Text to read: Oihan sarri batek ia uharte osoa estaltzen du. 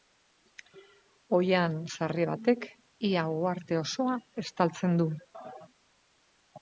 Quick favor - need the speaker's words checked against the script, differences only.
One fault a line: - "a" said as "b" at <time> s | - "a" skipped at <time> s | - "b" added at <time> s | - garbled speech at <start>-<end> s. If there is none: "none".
none